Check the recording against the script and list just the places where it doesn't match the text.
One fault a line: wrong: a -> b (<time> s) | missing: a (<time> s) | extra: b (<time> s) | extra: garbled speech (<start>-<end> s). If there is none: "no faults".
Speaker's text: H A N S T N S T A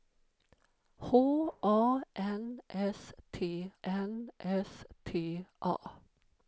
no faults